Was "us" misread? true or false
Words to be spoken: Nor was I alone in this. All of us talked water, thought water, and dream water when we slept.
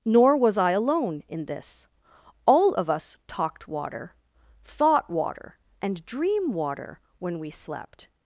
false